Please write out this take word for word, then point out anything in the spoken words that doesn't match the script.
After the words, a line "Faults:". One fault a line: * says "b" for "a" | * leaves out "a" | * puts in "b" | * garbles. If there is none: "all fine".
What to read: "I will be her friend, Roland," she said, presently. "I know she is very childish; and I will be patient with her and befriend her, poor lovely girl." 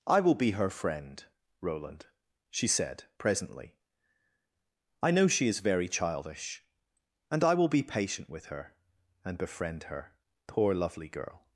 "I will be her friend, Roland," she said, presently. "I know she is very childish; and I will be patient with her and befriend her, poor lovely girl."
Faults:
all fine